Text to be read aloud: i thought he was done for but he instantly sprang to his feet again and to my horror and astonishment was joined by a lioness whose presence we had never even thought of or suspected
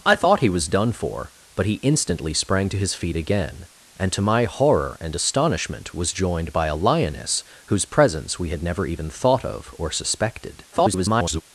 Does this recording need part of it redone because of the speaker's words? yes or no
yes